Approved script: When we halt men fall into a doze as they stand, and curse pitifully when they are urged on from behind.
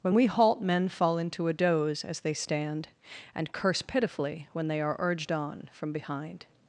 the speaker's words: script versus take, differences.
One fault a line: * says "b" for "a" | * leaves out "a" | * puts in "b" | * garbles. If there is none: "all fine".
all fine